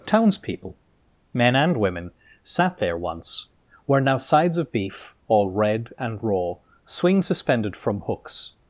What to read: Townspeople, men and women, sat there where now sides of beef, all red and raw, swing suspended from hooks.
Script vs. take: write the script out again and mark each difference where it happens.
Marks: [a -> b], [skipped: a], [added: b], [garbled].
Townspeople, men and women, sat there [added: once] where now sides of beef, all red and raw, swing suspended from hooks.